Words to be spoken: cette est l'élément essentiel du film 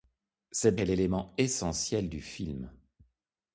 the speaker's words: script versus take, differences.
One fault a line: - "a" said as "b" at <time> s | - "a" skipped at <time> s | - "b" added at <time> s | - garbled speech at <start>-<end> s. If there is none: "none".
none